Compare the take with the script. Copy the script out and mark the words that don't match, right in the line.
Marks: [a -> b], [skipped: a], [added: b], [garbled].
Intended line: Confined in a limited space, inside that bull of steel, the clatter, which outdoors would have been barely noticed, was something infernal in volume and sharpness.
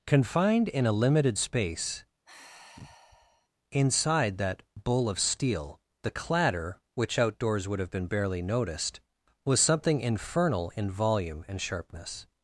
Confined in a limited space, inside that bull of steel, the clatter, which outdoors would have been barely noticed, was something infernal in volume and sharpness.